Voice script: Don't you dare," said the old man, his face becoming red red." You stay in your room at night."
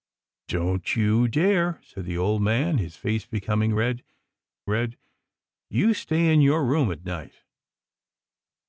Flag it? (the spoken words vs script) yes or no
no